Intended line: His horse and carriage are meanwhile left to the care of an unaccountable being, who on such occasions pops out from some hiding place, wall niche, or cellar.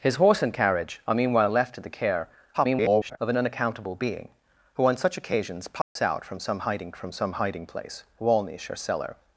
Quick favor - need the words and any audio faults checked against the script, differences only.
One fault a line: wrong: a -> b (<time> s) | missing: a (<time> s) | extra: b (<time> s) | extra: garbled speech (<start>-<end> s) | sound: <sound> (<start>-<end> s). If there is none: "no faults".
extra: garbled speech (2.5-3.2 s)
sound: dropout (5.8-6.0 s)
extra: from some hiding (7.0 s)